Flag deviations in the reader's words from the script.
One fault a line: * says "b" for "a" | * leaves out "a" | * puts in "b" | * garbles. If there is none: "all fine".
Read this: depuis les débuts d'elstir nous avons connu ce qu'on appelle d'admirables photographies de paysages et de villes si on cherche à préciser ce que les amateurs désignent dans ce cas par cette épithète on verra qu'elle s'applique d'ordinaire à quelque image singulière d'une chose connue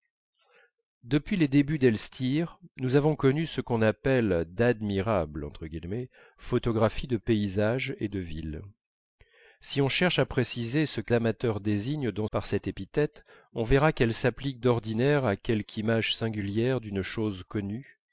* leaves out "les"
* leaves out "ce cas"